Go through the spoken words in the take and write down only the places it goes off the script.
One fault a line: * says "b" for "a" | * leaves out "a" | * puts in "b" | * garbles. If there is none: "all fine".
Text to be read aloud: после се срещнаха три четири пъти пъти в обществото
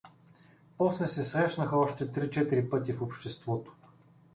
* puts in "още"
* leaves out "пъти"